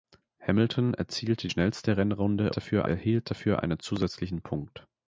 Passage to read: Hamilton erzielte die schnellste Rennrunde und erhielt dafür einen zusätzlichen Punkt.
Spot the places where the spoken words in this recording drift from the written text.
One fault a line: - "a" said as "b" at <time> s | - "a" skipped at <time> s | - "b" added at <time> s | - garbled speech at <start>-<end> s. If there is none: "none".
- "die" skipped at 1.5 s
- "und" said as "dafür" at 2.5 s